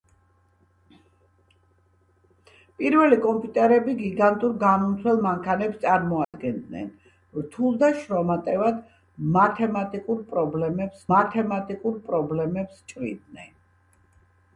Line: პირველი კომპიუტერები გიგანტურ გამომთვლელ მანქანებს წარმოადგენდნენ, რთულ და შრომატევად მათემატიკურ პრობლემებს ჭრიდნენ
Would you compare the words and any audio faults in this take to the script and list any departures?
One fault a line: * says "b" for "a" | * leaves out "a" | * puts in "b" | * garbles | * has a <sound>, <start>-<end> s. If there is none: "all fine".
* has a dropout, 6.2-6.3 s
* puts in "მათემატიკურ პრობლემებს"